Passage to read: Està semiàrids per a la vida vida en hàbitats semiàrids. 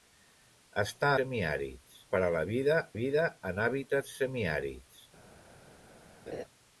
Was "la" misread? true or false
false